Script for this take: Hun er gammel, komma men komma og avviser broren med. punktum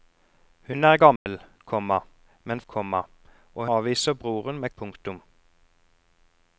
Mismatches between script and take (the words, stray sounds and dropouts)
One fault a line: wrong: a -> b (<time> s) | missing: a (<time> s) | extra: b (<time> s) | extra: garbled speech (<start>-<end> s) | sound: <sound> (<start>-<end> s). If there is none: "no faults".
sound: dropout (1.2-1.3 s)